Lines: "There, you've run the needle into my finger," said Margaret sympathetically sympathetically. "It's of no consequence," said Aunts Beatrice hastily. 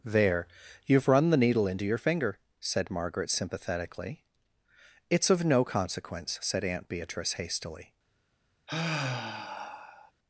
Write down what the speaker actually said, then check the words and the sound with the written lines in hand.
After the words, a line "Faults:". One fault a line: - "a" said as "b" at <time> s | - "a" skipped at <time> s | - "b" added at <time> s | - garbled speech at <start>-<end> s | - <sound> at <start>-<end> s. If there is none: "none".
"There, you've run the needle into your finger," said Margaret sympathetically. "It's of no consequence," said Aunt Beatrice hastily.
Faults:
- "my" said as "your" at 1.9 s
- "sympathetically" skipped at 4.2 s
- "Aunts" said as "Aunt" at 6.6 s
- sigh at 8.7-10.1 s